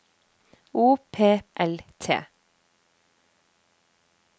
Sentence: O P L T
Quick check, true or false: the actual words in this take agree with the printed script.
true